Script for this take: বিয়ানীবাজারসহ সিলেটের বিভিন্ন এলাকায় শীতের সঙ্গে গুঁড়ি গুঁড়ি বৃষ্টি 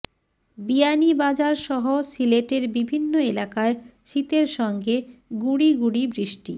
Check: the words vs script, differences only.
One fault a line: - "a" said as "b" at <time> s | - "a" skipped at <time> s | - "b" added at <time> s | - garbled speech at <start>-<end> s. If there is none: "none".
none